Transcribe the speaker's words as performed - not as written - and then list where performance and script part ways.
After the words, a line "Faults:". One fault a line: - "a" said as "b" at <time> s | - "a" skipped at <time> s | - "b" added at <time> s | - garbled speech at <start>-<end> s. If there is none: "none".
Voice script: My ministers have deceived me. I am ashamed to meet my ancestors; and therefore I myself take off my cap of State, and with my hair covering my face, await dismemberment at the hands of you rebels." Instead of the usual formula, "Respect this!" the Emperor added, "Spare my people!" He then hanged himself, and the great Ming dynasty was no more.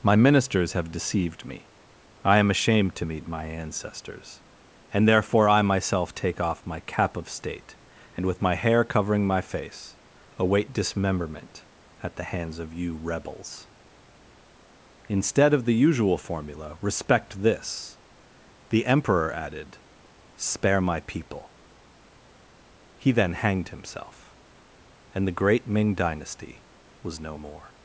My ministers have deceived me. I am ashamed to meet my ancestors; and therefore I myself take off my cap of State, and with my hair covering my face, await dismemberment at the hands of you rebels." Instead of the usual formula, "Respect this!" the Emperor added, "Spare my people!" He then hanged himself, and the great Ming dynasty was no more.
Faults:
none